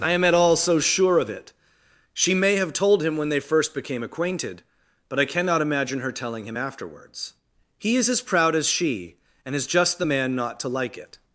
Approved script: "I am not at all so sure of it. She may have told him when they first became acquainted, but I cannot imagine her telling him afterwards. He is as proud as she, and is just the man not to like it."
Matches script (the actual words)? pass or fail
fail